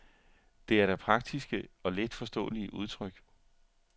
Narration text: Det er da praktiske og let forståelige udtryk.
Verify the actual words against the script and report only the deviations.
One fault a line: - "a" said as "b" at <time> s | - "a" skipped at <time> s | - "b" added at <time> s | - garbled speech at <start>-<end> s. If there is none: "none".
none